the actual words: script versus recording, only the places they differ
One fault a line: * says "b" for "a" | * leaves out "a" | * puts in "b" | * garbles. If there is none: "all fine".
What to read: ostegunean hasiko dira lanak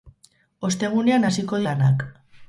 * leaves out "dira"